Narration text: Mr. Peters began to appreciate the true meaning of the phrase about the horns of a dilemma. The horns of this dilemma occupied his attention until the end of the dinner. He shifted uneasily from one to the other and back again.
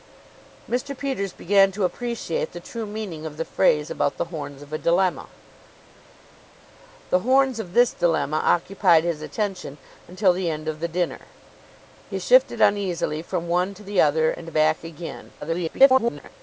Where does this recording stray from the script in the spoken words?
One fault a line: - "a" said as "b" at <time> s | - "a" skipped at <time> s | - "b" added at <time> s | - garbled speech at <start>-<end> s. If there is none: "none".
- garbled speech at 15.4-16.3 s